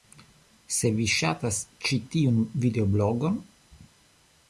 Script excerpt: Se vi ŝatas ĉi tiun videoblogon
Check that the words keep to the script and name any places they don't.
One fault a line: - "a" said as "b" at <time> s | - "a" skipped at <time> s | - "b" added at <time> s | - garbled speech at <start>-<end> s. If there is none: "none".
none